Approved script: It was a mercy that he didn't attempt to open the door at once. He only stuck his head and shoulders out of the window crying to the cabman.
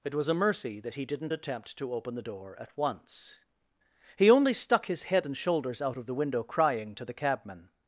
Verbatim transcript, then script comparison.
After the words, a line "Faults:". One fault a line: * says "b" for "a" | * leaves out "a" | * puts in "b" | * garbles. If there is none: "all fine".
It was a mercy that he didn't attempt to open the door at once. He only stuck his head and shoulders out of the window crying to the cabman.
Faults:
all fine